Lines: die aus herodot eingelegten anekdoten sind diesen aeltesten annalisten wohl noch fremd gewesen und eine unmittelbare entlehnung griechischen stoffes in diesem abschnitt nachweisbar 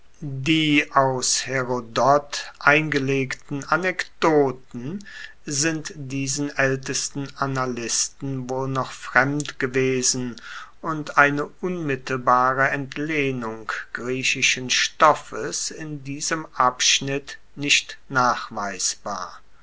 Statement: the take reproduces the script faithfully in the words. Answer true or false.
false